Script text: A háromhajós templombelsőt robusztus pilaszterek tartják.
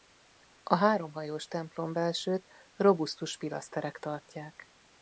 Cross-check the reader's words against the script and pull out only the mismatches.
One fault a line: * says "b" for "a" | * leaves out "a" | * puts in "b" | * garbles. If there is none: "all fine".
all fine